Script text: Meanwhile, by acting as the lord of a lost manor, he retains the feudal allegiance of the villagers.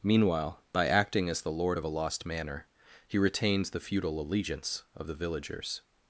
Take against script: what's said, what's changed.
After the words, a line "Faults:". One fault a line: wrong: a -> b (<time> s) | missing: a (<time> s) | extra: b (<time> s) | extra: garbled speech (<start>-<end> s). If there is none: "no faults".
Meanwhile, by acting as the lord of a lost manor, he retains the feudal allegiance of the villagers.
Faults:
no faults